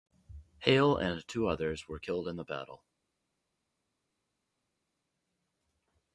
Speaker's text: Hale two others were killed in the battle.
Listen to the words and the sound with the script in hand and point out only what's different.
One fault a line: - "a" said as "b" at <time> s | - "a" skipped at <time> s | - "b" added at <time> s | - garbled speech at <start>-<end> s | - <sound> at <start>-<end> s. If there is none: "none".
- "and" added at 1.0 s